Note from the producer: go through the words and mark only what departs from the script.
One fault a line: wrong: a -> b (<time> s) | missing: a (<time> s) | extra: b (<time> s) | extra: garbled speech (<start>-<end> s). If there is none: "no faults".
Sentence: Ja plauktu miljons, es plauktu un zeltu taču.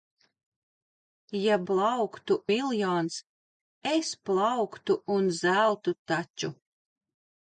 no faults